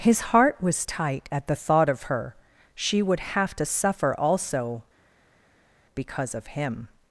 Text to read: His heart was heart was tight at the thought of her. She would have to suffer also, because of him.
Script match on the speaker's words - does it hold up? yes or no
no